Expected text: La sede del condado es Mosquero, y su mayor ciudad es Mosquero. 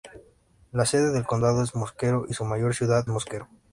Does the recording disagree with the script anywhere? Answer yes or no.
yes